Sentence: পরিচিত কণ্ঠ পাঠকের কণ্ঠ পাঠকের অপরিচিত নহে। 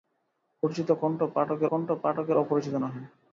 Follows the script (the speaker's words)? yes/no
yes